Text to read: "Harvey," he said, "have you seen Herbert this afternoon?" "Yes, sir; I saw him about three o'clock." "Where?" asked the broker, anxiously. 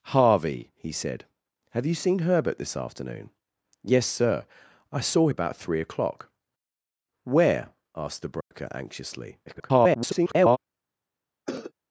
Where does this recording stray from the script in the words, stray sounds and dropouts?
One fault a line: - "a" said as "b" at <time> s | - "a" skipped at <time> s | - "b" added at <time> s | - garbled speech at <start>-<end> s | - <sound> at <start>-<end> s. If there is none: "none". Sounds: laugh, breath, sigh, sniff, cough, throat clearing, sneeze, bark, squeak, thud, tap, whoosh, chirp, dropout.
- "him" skipped at 5.3 s
- dropout at 8.4-8.5 s
- garbled speech at 9.5-10.6 s
- cough at 11.5-11.7 s